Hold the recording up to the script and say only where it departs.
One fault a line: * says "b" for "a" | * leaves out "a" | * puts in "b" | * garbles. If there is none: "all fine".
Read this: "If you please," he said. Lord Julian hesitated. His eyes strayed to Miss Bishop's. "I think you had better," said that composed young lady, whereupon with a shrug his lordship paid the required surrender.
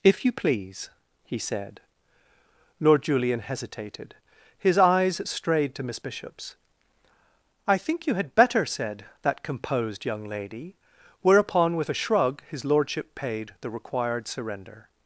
all fine